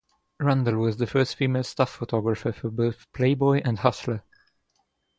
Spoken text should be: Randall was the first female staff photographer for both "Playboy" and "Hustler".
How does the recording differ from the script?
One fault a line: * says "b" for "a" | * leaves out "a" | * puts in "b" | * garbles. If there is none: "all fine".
all fine